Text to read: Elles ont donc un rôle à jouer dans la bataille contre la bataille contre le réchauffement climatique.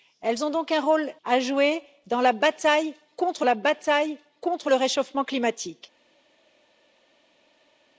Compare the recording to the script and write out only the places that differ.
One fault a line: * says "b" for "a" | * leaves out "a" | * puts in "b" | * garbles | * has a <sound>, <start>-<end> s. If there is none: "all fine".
all fine